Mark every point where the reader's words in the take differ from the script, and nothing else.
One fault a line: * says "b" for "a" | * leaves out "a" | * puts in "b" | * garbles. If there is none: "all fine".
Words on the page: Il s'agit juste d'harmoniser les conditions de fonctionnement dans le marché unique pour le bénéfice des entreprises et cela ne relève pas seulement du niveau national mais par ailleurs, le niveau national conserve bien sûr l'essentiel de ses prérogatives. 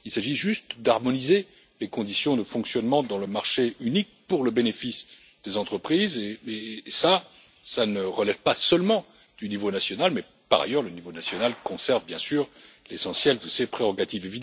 all fine